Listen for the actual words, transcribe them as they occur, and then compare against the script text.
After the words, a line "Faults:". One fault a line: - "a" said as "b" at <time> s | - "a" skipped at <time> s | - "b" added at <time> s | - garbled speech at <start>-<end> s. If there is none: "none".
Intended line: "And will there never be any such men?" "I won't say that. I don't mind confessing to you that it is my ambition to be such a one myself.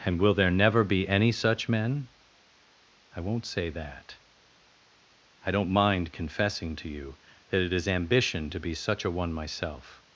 "And will there never be any such men?" "I won't say that. I don't mind confessing to you that it is ambition to be such a one myself.
Faults:
- "my" skipped at 7.9 s